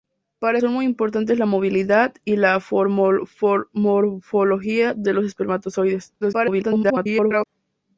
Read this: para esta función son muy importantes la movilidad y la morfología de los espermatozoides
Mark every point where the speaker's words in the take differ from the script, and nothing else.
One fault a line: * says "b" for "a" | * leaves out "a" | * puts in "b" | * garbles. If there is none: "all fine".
* leaves out "esta función"
* garbles